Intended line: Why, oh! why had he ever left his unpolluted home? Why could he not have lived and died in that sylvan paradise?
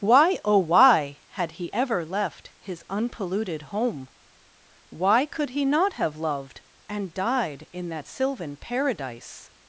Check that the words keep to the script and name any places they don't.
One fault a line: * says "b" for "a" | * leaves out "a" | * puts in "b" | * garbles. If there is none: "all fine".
* says "loved" for "lived"